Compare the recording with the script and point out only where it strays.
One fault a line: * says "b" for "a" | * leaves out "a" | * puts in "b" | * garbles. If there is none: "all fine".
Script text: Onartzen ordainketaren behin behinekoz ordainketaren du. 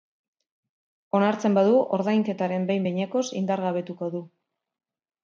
* puts in "badu"
* says "indargabetuko" for "ordainketaren"